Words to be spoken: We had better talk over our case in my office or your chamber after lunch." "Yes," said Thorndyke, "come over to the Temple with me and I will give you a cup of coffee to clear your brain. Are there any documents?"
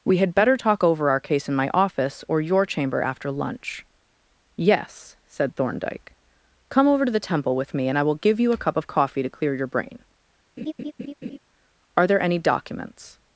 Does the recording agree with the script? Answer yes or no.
yes